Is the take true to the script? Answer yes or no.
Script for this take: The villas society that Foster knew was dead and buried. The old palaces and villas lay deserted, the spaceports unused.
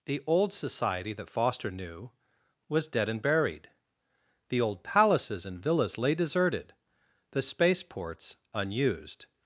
no